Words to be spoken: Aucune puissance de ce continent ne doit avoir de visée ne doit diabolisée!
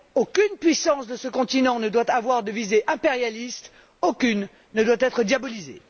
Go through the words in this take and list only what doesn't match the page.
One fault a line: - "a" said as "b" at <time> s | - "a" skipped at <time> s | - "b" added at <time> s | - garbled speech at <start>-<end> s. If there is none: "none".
- "impérialiste aucune" added at 2.9 s
- "être" added at 5.0 s